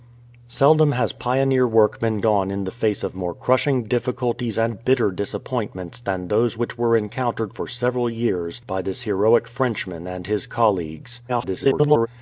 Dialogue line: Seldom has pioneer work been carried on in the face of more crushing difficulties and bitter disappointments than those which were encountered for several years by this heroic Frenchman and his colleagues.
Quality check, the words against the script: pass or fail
fail